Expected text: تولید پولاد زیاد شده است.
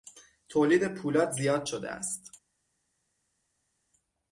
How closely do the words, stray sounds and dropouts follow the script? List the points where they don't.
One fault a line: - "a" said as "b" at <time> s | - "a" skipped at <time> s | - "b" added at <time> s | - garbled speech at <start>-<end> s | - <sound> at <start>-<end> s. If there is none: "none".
none